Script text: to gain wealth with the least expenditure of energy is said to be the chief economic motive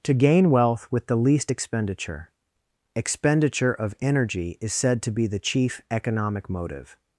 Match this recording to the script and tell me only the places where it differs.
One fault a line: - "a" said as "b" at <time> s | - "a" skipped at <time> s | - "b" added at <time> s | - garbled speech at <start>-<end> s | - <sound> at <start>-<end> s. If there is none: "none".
- "expenditure" added at 3.0 s